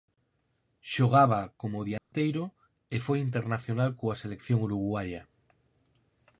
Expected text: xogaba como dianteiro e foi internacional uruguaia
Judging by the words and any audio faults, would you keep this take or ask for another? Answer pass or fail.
fail